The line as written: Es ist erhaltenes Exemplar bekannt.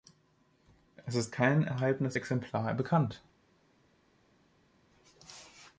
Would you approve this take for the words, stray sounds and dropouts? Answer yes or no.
no